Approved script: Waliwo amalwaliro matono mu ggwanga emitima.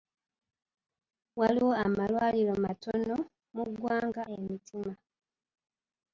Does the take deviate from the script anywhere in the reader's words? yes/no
no